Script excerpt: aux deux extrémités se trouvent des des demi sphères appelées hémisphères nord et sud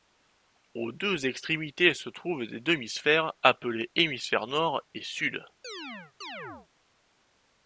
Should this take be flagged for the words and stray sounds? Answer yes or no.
yes